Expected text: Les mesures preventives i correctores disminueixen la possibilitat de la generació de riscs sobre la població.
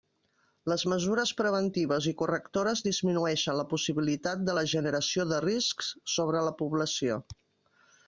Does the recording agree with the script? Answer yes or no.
yes